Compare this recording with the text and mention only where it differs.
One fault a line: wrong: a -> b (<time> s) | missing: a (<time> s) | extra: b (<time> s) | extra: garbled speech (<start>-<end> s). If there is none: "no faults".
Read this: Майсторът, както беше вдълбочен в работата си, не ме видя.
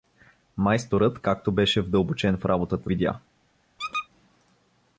missing: си не ме (2.9 s)